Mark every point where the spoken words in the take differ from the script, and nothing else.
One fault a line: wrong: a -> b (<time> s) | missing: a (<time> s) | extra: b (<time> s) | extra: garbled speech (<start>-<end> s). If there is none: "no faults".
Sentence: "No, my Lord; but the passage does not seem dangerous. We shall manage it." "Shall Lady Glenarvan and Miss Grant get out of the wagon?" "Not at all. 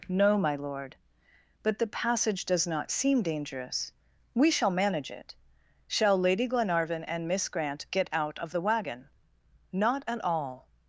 no faults